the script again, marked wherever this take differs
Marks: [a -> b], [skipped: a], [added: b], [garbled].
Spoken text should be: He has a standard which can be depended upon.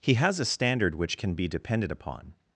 He has a standard which can be depended upon.